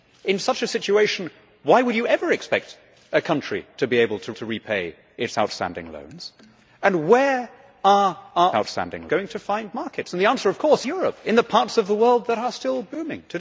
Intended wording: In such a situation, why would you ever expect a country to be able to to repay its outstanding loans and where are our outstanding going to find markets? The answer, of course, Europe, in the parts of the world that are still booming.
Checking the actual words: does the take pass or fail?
pass